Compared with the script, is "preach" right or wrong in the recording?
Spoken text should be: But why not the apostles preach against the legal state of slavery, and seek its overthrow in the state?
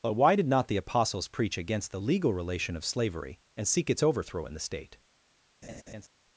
right